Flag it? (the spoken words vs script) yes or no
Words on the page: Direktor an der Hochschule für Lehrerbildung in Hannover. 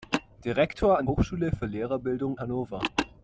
yes